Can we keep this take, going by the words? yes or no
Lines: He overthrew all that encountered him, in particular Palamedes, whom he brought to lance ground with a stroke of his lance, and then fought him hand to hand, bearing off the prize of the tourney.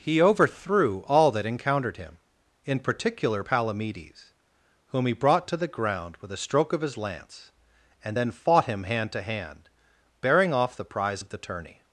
no